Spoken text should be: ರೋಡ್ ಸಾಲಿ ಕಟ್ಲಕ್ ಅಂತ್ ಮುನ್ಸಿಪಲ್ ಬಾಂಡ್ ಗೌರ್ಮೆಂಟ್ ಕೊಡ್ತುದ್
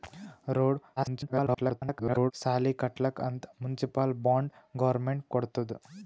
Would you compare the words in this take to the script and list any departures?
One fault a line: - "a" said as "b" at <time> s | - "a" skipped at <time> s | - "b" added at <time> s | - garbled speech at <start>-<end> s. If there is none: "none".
- garbled speech at 1.0-2.3 s